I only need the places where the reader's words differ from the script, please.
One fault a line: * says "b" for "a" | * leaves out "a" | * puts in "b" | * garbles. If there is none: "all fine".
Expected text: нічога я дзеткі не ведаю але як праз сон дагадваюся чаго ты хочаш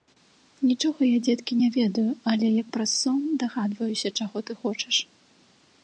all fine